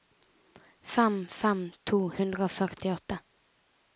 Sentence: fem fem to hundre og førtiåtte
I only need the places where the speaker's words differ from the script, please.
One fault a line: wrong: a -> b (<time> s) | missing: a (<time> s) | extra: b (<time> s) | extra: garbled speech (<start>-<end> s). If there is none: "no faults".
no faults